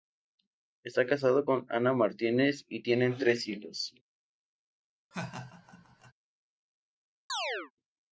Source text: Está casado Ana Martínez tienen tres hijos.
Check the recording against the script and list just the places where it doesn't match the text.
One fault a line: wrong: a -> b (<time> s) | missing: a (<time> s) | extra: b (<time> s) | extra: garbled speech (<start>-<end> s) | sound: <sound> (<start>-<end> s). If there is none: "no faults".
extra: con (1.4 s)
extra: y (2.7 s)
sound: laugh (5.1-6.1 s)
sound: chirp (7.3-7.7 s)